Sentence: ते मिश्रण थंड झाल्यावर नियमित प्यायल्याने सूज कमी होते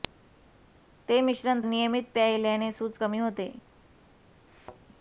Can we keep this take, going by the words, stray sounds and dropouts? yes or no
no